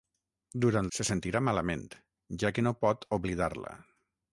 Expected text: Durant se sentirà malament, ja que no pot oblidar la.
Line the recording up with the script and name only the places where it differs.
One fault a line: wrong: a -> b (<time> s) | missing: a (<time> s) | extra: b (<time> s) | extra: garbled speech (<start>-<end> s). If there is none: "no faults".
no faults